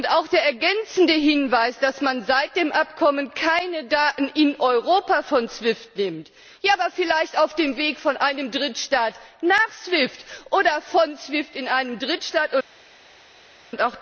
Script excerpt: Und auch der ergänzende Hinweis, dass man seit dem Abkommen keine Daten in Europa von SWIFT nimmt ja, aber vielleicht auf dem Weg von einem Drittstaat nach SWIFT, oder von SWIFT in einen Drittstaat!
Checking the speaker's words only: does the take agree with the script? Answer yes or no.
yes